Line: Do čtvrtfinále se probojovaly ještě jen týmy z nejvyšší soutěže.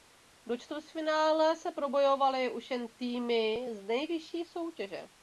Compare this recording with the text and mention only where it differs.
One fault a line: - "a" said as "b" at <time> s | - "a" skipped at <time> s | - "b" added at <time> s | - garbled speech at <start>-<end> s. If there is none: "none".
- "ještě" said as "už" at 2.5 s